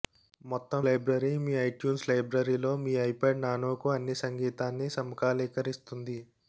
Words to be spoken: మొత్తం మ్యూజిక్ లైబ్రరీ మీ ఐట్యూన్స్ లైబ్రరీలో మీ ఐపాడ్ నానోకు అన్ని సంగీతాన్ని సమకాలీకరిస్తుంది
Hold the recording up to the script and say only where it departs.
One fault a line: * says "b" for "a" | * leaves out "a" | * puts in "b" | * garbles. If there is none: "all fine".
* leaves out "మ్యూజిక్"